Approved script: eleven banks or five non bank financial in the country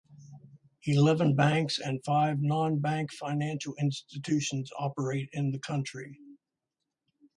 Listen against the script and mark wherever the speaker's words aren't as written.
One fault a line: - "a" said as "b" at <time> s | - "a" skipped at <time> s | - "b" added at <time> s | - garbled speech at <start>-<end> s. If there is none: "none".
- "or" said as "and" at 1.8 s
- "institutions operate" added at 3.8 s